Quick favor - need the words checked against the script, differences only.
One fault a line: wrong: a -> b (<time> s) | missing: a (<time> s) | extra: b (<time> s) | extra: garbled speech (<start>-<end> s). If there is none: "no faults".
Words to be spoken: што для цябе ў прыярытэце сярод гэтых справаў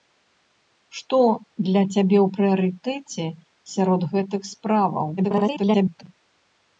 extra: garbled speech (5.2-6.0 s)